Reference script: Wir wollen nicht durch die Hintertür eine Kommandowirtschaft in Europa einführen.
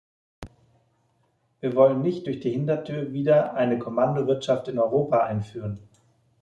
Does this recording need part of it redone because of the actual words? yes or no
yes